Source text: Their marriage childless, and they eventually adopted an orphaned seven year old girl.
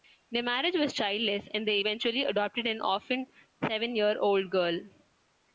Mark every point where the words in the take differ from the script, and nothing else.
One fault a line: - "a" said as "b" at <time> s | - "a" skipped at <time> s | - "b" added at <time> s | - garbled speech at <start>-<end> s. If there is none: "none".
- "was" added at 0.8 s